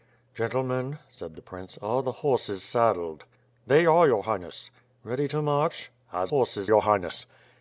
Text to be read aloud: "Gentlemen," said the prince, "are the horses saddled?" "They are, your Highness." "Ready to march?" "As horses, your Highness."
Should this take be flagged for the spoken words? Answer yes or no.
no